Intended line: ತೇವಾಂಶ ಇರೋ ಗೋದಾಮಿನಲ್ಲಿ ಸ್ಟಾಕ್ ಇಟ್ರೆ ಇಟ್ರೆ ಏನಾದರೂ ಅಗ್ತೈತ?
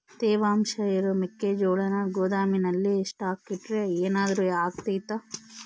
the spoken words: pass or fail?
fail